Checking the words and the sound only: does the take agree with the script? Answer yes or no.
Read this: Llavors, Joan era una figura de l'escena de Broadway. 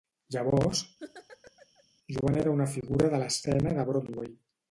no